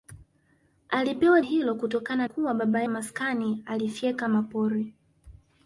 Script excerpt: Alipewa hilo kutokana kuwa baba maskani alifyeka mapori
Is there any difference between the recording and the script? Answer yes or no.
no